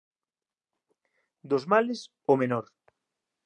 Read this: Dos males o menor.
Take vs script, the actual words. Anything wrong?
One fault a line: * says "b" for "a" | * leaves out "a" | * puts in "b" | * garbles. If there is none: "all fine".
all fine